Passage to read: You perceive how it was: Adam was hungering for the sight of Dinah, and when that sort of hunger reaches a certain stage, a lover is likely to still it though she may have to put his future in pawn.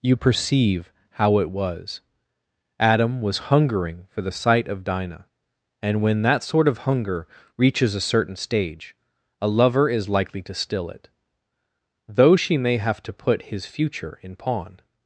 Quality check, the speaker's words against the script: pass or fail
pass